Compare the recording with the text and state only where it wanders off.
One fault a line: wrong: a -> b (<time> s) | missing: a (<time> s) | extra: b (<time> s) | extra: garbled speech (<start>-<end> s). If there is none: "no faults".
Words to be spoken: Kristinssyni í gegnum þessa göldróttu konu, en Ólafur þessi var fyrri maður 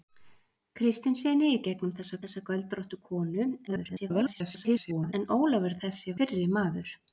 extra: þessa (2.2 s)
extra: garbled speech (3.7-5.1 s)
missing: var (6.2 s)